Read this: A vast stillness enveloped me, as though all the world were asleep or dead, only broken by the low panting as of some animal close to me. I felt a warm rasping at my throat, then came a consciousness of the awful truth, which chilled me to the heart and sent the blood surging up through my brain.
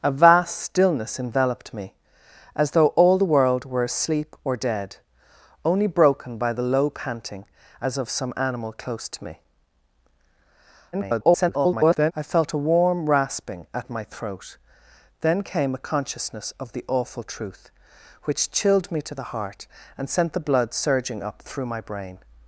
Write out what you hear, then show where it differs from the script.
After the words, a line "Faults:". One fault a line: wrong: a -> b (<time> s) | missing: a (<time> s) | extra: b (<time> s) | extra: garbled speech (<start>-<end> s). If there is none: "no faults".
A vast stillness enveloped me, as though all the world were asleep or dead, only broken by the low panting as of some animal close to me. [garbled] I felt a warm rasping at my throat, then came a consciousness of the awful truth, which chilled me to the heart and sent the blood surging up through my brain.
Faults:
extra: garbled speech (10.9-12.1 s)